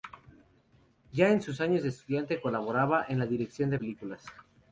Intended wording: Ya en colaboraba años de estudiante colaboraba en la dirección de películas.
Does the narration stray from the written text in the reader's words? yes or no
yes